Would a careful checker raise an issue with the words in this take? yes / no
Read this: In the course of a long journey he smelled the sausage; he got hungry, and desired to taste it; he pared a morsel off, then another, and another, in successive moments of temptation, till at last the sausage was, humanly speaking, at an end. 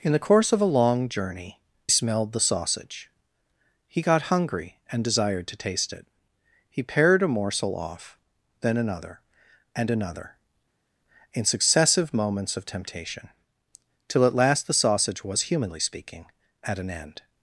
yes